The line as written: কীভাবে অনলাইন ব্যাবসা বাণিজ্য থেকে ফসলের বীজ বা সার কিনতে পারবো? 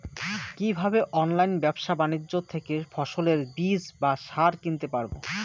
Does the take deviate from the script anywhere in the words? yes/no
no